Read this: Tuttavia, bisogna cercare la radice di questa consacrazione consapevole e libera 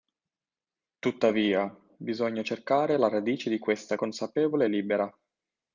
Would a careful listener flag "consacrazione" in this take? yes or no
yes